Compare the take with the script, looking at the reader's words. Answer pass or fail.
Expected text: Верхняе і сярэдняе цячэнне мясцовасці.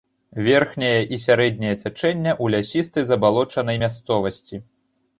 fail